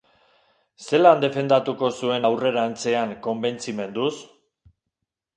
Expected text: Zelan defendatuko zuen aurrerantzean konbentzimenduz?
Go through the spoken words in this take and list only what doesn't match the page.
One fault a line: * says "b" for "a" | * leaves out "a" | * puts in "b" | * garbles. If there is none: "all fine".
all fine